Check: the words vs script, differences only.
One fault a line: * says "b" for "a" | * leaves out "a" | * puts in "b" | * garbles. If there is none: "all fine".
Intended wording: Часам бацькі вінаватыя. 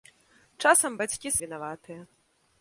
all fine